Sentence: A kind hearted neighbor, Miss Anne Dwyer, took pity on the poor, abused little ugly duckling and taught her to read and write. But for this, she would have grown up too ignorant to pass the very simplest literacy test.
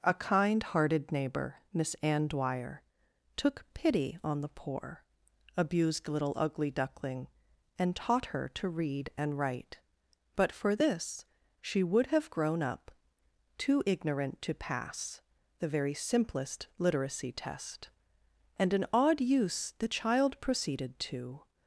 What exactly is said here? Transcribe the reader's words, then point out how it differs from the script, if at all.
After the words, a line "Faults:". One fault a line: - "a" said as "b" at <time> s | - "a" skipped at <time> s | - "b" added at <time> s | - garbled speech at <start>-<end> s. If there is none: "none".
A kind hearted neighbor, Miss Anne Dwyer, took pity on the poor, abused little ugly duckling and taught her to read and write. But for this, she would have grown up too ignorant to pass the very simplest literacy test. And an odd use the child proceeded to
Faults:
- "And an odd use the child proceeded to" added at 18.6 s